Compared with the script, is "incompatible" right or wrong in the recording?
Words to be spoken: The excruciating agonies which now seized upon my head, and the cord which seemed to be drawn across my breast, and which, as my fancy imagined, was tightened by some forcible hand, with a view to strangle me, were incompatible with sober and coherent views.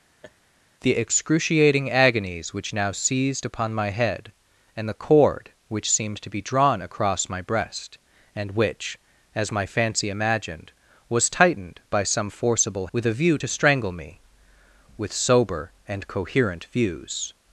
wrong